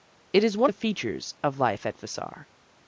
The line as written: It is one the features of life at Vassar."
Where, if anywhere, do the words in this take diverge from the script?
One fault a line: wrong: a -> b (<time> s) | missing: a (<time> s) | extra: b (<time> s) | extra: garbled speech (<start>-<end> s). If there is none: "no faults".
no faults